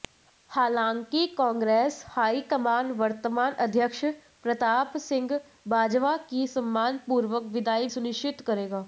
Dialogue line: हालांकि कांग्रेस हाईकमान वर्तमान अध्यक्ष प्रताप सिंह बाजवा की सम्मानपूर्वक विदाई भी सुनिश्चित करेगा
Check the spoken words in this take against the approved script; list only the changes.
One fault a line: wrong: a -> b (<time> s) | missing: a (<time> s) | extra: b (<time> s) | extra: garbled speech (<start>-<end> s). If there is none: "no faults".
missing: भी (7.9 s)